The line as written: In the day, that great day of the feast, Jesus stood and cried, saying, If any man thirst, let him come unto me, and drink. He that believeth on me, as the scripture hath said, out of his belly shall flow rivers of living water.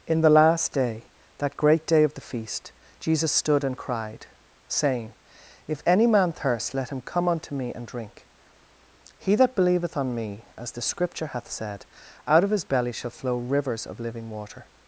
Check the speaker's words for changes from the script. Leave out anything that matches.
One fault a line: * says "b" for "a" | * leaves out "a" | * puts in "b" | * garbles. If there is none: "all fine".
* puts in "last"